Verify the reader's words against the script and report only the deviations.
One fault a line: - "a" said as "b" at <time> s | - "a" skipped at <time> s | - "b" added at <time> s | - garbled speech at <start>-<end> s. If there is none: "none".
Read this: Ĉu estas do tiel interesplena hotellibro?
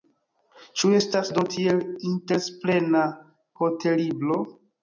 none